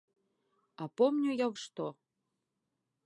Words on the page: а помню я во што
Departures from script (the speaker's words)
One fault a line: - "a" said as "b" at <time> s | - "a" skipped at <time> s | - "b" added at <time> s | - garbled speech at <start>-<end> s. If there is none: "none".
- "во" skipped at 1.5 s